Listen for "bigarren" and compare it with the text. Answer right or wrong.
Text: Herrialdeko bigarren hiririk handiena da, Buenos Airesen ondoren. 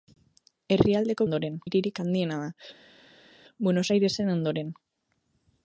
wrong